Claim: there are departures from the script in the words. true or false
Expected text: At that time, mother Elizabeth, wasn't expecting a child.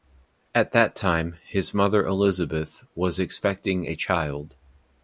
true